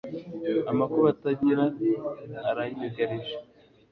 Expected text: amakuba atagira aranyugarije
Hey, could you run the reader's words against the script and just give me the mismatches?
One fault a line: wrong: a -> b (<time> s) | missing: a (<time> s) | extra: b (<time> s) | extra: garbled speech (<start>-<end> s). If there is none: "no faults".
no faults